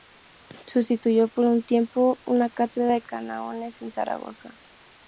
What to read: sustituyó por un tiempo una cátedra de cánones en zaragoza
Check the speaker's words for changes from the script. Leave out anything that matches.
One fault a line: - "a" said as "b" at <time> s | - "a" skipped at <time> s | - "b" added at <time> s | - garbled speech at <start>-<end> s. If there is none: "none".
none